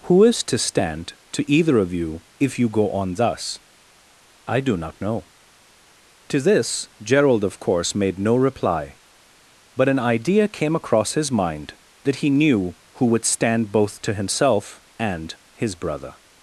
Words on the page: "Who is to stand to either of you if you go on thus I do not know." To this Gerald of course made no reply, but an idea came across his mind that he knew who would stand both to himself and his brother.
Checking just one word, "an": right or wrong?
right